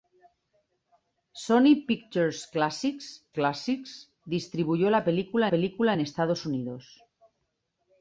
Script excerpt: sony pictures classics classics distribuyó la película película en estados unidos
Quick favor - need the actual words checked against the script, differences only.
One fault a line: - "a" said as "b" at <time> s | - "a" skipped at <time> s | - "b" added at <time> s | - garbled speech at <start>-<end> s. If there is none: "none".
none